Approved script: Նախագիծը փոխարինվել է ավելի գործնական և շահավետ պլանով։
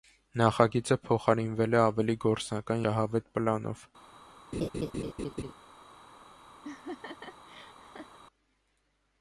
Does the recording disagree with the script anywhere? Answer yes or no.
yes